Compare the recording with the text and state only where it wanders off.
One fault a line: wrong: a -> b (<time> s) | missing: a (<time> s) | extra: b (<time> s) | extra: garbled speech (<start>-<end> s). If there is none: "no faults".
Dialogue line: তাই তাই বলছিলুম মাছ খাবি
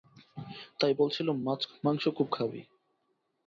missing: তাই (0.9 s)
extra: মাংস খুব (1.8 s)